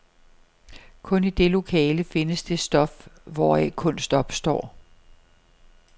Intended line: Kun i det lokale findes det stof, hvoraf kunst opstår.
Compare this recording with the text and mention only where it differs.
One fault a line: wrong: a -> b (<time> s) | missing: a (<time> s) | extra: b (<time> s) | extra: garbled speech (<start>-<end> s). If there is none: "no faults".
no faults